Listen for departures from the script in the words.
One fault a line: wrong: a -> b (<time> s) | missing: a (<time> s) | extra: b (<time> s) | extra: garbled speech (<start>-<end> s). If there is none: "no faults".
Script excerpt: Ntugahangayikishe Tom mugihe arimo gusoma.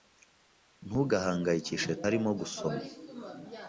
missing: Tom mugihe (1.9 s)